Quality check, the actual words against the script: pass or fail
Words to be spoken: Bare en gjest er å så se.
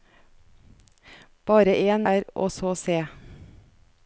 fail